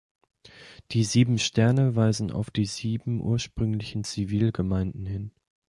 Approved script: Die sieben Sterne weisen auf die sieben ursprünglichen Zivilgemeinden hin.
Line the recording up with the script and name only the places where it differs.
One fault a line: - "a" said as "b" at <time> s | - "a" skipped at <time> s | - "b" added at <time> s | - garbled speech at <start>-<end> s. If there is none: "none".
none